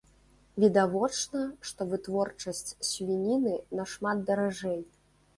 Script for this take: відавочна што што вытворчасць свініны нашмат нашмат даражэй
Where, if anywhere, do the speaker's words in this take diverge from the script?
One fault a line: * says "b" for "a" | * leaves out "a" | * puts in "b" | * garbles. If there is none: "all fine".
* leaves out "што"
* leaves out "нашмат"